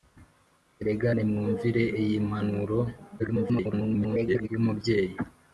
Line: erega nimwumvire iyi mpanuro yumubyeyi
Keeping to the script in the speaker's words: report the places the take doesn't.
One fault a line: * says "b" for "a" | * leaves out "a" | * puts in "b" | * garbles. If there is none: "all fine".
* garbles